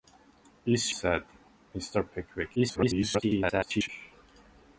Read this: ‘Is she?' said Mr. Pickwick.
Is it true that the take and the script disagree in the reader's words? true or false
true